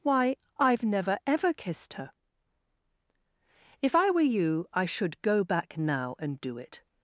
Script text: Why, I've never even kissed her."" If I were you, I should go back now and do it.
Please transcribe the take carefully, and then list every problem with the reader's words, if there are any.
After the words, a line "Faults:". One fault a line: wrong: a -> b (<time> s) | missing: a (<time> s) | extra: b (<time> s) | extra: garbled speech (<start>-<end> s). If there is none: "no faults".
Why, I've never ever kissed her."" If I were you, I should go back now and do it.
Faults:
wrong: even -> ever (1.2 s)